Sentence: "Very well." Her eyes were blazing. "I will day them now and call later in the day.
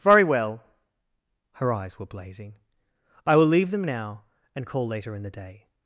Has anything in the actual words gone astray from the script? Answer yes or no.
yes